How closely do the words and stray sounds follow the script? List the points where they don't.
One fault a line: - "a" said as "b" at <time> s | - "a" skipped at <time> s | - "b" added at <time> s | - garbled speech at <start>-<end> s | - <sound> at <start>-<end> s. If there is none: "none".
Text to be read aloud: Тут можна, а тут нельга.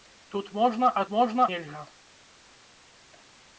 - "тут" said as "можна" at 1.1 s